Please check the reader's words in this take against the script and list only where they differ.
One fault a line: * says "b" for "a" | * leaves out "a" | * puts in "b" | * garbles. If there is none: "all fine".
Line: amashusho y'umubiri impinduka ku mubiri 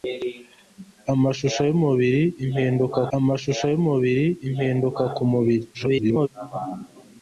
* puts in "amashusho y'umubiri impinduka"
* garbles